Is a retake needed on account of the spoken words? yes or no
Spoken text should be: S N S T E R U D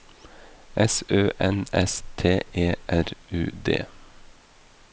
yes